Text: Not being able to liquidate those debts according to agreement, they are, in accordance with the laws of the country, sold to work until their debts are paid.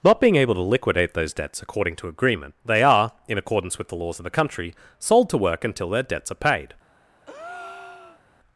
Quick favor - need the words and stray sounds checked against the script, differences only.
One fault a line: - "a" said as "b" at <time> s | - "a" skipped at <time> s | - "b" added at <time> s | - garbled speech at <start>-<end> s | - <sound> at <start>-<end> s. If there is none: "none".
- breath at 7.3-8.2 s